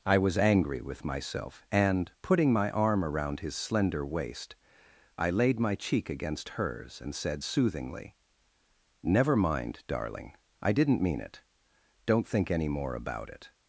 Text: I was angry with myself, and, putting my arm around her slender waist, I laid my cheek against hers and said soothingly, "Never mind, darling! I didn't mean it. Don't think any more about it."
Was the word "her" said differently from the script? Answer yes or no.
yes